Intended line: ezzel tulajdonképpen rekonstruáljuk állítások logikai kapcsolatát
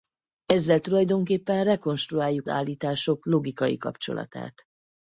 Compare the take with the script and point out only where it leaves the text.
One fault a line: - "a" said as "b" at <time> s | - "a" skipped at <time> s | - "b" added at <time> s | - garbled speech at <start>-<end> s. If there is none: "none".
none